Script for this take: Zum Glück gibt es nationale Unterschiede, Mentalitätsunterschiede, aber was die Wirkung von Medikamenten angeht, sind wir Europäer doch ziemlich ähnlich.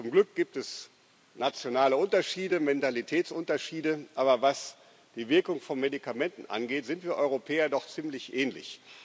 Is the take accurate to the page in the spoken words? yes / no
yes